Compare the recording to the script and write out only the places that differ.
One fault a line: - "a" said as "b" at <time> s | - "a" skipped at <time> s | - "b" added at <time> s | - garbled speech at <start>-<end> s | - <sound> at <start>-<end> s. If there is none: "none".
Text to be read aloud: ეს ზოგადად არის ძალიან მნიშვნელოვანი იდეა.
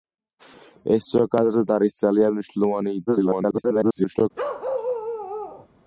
- garbled speech at 3.1-4.3 s
- bark at 4.4-5.7 s